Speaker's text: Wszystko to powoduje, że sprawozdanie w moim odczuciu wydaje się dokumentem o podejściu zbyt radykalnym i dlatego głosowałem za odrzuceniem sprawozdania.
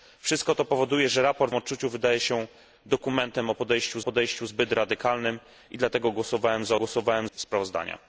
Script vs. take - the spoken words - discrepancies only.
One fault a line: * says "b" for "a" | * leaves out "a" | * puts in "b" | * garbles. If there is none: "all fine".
* leaves out "moim"
* puts in "podejściu"
* says "głosowałem" for "odrzuceniem"